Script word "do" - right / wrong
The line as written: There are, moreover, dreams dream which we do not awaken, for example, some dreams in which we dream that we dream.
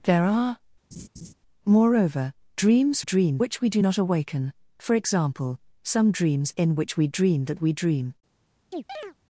right